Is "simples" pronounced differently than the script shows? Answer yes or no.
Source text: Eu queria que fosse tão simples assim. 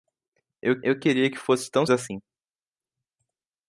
yes